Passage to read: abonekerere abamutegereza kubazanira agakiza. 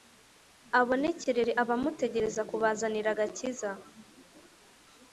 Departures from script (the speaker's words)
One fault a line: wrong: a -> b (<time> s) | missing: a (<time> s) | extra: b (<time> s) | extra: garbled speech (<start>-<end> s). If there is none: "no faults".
no faults